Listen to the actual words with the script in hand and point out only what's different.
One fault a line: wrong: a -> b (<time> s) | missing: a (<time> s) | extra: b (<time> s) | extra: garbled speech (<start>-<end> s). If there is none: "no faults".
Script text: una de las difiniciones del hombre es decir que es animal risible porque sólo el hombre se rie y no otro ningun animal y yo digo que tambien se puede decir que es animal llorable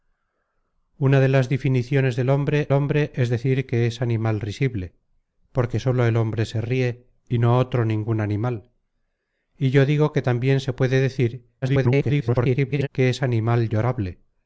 extra: hombre (2.7 s)
extra: garbled speech (11.6-12.9 s)